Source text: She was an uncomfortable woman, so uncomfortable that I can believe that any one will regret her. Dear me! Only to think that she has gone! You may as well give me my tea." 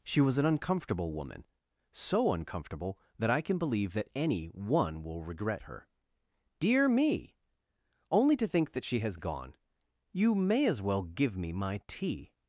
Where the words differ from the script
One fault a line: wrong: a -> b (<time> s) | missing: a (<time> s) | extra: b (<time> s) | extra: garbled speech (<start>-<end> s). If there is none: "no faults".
no faults